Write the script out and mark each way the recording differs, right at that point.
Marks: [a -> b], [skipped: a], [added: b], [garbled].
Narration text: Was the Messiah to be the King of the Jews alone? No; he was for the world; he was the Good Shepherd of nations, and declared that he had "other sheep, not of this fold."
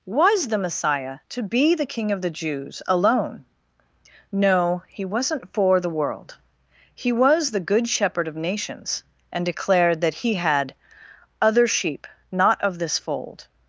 Was the Messiah to be the King of the Jews alone? No; he [was -> wasn't] for the world; he was the Good Shepherd of nations, and declared that he had "other sheep, not of this fold."